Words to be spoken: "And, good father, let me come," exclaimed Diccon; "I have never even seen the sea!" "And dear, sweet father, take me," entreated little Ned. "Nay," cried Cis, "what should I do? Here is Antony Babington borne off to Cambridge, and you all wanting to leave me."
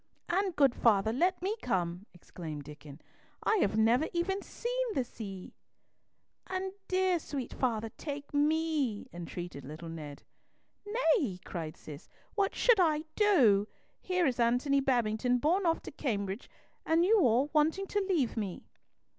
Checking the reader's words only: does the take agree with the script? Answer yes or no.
yes